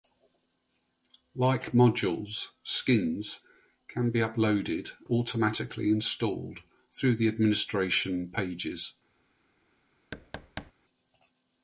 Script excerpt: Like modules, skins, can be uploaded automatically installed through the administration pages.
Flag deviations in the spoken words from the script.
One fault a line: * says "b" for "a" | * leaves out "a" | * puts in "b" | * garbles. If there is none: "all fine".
all fine